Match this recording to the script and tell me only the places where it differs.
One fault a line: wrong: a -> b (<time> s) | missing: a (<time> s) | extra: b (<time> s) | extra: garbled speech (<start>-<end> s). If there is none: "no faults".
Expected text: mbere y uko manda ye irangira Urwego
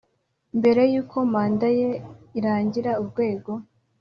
no faults